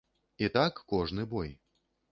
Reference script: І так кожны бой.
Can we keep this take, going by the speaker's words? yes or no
yes